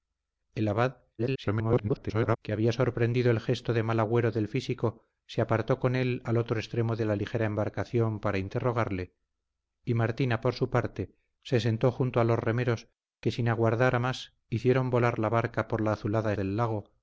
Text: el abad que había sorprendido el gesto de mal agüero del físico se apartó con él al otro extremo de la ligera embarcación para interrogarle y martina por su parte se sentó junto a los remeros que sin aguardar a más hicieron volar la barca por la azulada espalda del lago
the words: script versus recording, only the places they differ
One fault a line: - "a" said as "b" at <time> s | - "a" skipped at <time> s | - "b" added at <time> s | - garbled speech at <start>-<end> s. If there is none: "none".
- garbled speech at 1.2-2.4 s
- "espalda" skipped at 16.3 s